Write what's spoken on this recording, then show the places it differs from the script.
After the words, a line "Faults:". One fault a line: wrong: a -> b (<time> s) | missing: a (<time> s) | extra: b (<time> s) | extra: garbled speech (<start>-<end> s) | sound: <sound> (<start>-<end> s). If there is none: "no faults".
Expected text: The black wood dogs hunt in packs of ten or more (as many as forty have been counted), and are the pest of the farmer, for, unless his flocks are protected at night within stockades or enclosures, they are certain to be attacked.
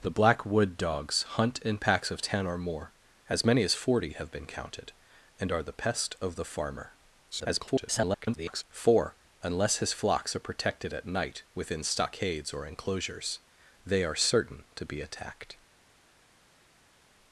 The black wood dogs hunt in packs of ten or more (as many as forty have been counted), and are the pest of the farmer, [garbled] for, unless his flocks are protected at night within stockades or enclosures, they are certain to be attacked.
Faults:
extra: garbled speech (7.3-8.6 s)